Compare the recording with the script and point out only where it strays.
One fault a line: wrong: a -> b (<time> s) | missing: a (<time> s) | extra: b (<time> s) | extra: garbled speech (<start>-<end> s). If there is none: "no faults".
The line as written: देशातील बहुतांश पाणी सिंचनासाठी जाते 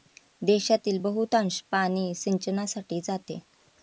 no faults